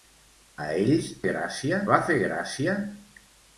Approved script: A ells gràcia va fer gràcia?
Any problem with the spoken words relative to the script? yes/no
no